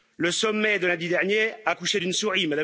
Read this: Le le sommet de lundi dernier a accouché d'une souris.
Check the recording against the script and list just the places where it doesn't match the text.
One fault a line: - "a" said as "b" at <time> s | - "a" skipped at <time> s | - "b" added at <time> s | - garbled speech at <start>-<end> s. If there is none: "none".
- "le" skipped at 0.3 s